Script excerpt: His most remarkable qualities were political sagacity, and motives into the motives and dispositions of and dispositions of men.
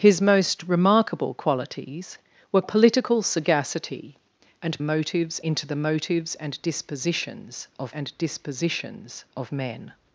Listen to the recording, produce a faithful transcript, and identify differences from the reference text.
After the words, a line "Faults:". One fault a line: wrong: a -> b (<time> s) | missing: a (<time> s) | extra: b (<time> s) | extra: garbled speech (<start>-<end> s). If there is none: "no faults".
His most remarkable qualities were political sagacity, and motives into the motives and dispositions of and dispositions of men.
Faults:
no faults